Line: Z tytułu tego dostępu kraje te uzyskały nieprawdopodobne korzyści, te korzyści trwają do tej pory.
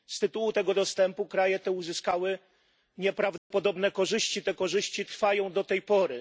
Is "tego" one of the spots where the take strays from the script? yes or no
no